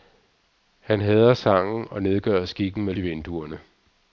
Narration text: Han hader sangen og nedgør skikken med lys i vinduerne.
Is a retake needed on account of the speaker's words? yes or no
yes